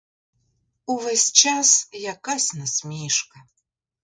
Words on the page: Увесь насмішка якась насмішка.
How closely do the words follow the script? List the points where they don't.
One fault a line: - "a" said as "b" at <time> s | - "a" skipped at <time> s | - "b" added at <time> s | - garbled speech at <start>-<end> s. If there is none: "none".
- "насмішка" said as "час" at 1.3 s